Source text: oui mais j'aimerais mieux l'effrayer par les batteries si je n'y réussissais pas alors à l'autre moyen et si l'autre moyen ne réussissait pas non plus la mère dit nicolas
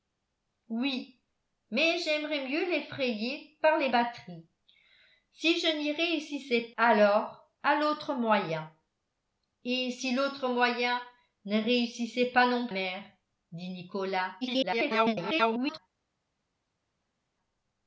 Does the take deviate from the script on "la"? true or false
true